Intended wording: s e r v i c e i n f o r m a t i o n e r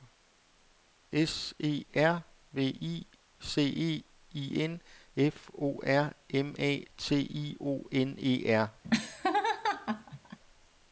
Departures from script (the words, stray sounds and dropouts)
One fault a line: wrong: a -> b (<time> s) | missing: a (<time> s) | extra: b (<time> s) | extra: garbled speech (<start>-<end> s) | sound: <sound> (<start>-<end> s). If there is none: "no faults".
sound: laugh (8.8-10.4 s)